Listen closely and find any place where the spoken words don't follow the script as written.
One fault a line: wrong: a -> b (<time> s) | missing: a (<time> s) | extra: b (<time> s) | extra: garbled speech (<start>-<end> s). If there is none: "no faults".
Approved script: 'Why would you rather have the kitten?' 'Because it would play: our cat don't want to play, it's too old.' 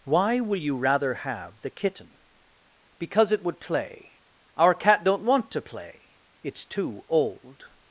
wrong: would -> will (0.4 s)